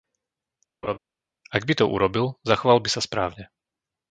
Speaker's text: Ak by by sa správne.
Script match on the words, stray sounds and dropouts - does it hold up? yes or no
no